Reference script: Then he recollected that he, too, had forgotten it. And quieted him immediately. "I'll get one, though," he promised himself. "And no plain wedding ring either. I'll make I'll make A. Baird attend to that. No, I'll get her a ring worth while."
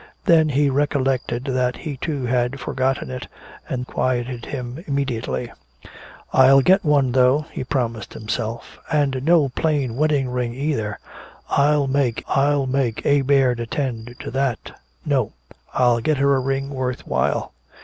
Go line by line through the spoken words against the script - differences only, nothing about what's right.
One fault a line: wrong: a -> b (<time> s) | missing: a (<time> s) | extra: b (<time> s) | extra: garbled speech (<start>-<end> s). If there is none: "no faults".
no faults